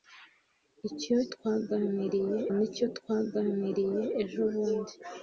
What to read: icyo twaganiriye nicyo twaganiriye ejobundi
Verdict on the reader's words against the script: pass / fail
pass